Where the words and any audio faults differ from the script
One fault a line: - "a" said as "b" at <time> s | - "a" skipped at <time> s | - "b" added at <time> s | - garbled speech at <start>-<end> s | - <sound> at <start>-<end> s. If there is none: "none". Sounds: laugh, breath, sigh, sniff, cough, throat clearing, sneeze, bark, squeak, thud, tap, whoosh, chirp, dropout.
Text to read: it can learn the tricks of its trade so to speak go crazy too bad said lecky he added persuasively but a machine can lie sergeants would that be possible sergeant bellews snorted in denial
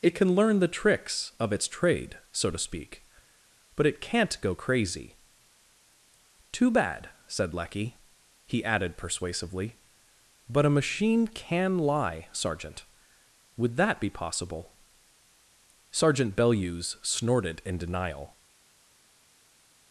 - "but it can't" added at 3.8 s
- "sergeants" said as "sergeant" at 12.3 s